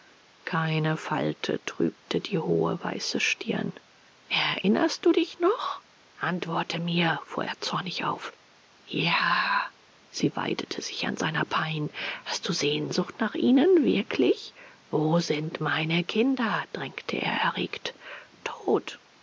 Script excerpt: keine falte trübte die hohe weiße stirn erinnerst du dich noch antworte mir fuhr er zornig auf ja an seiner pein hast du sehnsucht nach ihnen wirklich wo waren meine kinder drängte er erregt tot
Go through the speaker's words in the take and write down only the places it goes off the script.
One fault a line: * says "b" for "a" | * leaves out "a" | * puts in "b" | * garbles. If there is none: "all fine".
* puts in "sie weidete sich"
* says "sind" for "waren"